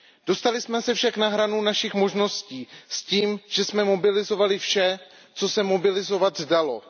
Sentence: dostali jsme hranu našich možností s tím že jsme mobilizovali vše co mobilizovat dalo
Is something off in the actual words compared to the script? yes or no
yes